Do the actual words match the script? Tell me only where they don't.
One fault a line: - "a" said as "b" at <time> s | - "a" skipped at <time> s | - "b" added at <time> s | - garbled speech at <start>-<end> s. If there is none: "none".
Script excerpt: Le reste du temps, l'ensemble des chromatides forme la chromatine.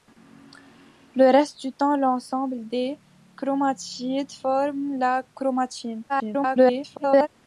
- garbled speech at 6.1-7.3 s